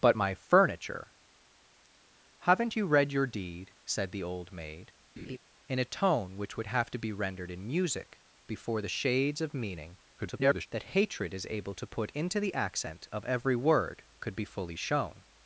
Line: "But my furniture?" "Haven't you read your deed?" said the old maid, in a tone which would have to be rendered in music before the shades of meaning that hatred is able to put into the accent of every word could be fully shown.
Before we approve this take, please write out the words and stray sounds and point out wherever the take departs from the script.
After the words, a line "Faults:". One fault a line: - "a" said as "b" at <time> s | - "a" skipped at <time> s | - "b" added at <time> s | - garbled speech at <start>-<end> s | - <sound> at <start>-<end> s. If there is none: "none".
"But my furniture?" "Haven't you read your deed?" said the old maid, in a tone which would have to be rendered in music before the shades of meaning [garbled] that hatred is able to put into the accent of every word could be fully shown.
Faults:
- laugh at 5.2-5.4 s
- garbled speech at 10.2-10.7 s